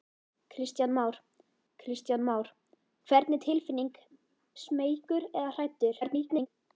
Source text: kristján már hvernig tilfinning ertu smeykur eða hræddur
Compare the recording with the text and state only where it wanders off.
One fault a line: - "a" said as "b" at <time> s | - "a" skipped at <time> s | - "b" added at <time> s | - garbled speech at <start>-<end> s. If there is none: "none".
- "kristján már" added at 1.8 s
- "ertu" skipped at 4.0 s
- garbled speech at 6.0-6.5 s